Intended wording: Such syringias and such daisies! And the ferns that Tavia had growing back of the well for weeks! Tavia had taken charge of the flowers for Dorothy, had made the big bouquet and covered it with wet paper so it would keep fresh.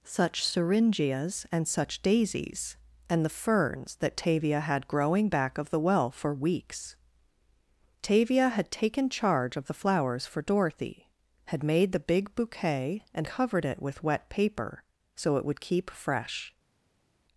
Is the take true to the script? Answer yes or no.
yes